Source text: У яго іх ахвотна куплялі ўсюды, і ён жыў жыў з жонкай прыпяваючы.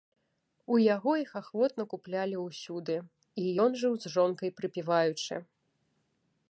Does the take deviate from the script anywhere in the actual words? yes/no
yes